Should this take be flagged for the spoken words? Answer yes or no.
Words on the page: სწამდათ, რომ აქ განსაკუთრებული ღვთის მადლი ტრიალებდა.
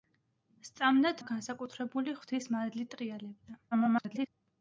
yes